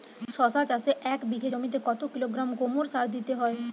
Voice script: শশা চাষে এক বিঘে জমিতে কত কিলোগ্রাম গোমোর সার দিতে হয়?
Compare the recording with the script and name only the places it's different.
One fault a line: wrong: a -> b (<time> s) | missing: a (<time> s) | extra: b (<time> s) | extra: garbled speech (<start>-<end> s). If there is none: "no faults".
no faults